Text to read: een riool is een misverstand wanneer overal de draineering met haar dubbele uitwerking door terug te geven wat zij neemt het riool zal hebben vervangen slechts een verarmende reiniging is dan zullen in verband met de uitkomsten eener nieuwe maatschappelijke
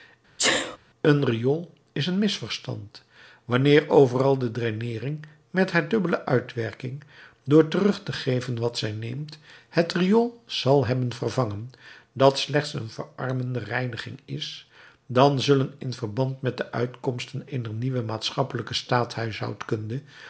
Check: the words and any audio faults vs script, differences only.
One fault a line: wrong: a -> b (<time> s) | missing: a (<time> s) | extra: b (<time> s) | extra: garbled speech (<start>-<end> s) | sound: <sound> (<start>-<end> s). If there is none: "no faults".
sound: sneeze (0.4-0.8 s)
extra: dat (12.1 s)